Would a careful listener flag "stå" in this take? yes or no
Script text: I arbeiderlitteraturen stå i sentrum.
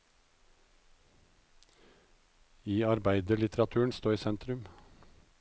no